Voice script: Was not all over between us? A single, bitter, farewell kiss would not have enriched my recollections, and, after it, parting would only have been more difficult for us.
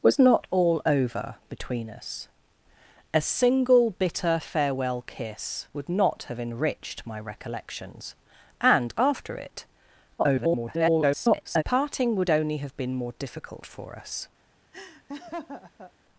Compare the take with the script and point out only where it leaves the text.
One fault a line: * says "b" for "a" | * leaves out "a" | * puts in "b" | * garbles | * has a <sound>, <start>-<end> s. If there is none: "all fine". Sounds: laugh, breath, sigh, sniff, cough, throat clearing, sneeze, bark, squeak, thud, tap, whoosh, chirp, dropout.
* garbles
* has a laugh, 14.7-15.9 s